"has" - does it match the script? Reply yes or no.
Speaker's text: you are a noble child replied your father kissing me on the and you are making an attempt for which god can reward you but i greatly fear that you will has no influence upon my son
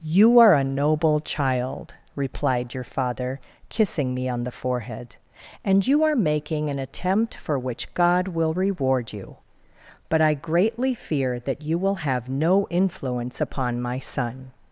no